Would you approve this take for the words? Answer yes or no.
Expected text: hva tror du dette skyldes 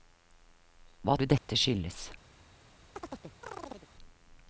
no